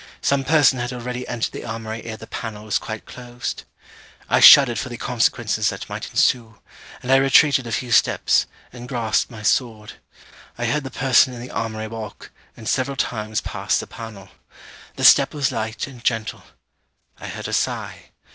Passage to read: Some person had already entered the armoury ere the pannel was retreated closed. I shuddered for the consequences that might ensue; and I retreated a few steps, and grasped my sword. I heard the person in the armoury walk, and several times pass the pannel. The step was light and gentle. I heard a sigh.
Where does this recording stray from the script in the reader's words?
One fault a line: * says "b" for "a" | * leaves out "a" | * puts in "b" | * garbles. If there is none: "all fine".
* says "quite" for "retreated"